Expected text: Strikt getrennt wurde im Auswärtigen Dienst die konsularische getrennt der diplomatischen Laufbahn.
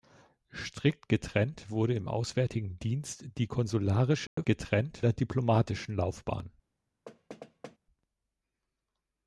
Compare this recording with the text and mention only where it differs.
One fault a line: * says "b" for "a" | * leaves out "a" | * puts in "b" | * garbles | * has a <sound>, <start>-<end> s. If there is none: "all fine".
* has a dropout, 4.3-4.4 s
* has a thud, 7.1-7.8 s